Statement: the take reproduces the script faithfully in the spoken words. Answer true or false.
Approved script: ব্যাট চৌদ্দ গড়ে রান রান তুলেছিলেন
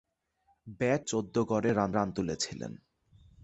true